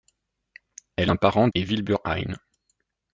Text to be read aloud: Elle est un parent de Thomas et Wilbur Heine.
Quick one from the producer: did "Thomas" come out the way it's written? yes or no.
no